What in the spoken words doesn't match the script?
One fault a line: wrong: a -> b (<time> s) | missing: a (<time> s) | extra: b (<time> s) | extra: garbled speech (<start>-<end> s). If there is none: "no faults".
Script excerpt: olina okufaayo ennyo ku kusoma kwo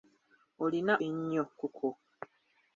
missing: okufaayo (0.9 s)
missing: kusoma (1.6 s)